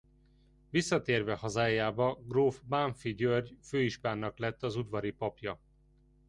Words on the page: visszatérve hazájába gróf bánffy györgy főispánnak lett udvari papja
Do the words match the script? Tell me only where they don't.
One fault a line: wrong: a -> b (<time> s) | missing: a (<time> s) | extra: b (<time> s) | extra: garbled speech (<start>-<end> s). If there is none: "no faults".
extra: az (4.6 s)